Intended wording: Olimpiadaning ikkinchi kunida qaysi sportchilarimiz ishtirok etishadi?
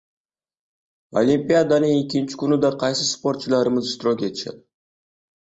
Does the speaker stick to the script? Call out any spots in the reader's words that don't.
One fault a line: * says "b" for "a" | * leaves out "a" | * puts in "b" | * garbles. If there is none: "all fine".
all fine